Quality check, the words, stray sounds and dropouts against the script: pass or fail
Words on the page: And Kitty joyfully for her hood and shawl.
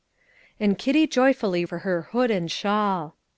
pass